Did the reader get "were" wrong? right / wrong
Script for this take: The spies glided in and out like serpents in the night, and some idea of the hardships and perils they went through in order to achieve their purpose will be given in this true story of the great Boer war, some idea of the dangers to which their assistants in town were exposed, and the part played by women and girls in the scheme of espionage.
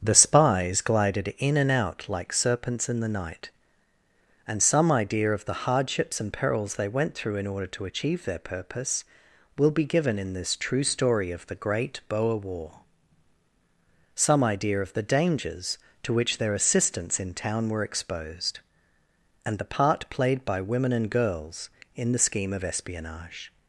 right